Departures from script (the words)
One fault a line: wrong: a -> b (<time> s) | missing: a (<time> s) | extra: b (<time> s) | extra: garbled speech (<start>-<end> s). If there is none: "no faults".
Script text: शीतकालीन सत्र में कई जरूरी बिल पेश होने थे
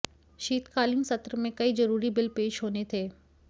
no faults